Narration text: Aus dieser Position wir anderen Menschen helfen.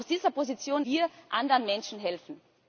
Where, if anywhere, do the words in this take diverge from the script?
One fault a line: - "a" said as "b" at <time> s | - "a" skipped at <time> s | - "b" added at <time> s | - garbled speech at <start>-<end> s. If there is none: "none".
none